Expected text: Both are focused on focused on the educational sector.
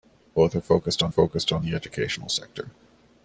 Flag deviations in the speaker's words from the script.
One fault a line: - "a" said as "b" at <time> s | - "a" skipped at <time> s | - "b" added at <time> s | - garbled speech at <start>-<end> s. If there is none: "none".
none